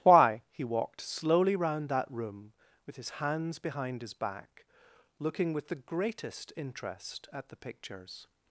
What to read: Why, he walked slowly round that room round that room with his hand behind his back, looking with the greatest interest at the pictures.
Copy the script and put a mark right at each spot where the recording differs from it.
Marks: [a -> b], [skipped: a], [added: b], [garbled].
Why, he walked slowly round that room [skipped: round that room] with his [hand -> hands] behind his back, looking with the greatest interest at the pictures.